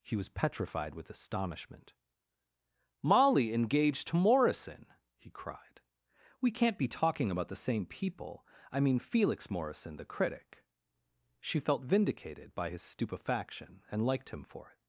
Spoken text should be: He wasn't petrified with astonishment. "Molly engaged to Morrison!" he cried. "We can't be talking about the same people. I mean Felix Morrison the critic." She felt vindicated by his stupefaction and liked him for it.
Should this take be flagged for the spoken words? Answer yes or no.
yes